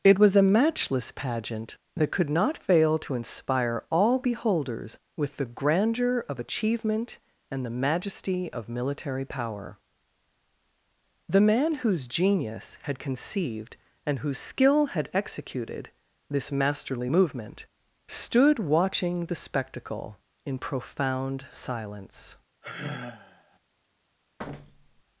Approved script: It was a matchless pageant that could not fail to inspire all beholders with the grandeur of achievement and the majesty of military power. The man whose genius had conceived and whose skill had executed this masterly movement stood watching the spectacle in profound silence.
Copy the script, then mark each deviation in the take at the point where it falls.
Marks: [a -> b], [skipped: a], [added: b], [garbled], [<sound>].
It was a matchless pageant that could not fail to inspire all beholders with the grandeur of achievement and the majesty of military power. The man whose genius had conceived and whose skill had executed this masterly movement stood watching the spectacle in profound silence. [sigh] [thud]